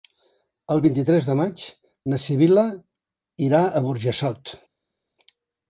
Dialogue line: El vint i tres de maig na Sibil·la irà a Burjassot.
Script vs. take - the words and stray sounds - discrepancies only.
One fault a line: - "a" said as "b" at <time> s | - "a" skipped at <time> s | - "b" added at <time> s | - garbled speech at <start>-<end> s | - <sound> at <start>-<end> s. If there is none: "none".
none